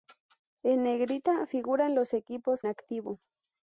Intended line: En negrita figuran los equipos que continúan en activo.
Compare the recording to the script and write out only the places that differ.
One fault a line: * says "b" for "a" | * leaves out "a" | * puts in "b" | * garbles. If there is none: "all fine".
* leaves out "que continúan en"